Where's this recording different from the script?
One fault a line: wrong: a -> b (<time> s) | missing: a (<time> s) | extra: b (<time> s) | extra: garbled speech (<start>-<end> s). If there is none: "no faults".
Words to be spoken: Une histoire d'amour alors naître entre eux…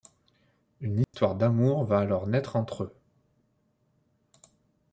extra: va (1.8 s)